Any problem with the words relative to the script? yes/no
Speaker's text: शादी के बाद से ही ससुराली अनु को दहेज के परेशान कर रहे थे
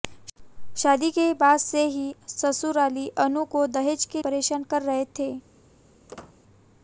no